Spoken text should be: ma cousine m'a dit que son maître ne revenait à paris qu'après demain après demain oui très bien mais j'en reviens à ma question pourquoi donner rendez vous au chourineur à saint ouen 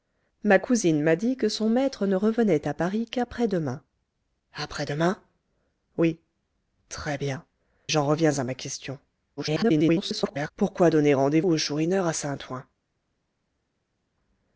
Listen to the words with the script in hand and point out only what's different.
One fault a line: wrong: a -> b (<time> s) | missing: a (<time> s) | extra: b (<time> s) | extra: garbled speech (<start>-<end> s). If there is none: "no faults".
missing: mais (7.4 s)
extra: garbled speech (9.4-10.5 s)
missing: vous (11.4 s)